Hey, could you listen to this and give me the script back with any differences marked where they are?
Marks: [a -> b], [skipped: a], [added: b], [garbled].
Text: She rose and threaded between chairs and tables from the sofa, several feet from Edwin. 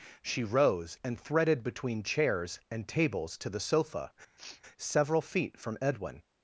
She rose and threaded between chairs and tables [from -> to] the sofa, several feet from Edwin.